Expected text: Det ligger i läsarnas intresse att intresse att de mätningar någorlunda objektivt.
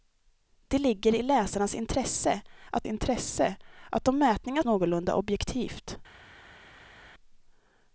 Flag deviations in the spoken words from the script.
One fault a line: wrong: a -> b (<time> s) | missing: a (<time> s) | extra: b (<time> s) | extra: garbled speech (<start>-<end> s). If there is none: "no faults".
no faults